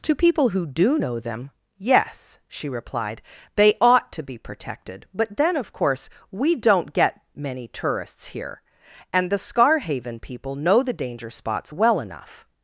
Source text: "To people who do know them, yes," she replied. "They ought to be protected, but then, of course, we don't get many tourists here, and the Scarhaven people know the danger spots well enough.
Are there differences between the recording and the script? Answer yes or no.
no